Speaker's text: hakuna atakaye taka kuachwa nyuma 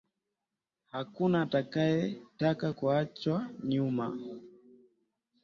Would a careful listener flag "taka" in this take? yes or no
no